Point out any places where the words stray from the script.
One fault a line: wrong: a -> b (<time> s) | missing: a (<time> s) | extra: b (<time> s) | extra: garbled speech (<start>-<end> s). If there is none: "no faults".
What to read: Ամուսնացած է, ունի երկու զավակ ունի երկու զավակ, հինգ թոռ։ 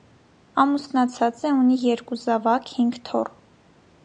missing: ունի երկու զավակ (2.8 s)